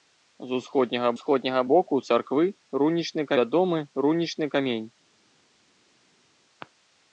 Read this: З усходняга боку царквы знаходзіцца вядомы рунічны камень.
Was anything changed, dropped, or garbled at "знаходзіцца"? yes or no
yes